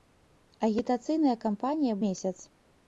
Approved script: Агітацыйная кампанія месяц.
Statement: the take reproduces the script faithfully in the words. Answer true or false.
true